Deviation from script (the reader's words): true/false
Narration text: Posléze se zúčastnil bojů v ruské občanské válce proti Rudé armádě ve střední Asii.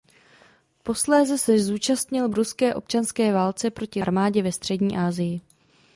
true